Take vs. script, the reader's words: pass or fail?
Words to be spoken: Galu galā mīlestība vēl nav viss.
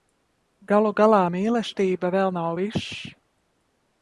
pass